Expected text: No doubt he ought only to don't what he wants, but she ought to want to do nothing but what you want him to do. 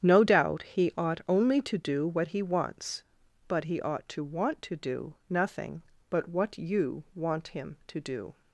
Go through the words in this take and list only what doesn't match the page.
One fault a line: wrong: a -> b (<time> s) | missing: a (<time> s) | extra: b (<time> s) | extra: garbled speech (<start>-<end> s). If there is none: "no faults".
wrong: don't -> do (1.8 s)
wrong: she -> he (3.6 s)